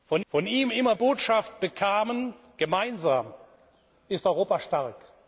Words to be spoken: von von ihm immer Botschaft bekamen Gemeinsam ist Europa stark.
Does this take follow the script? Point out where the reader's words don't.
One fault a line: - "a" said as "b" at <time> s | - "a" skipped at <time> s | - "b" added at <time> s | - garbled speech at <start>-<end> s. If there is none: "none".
none